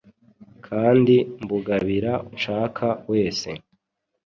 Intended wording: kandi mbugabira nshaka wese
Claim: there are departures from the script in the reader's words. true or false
false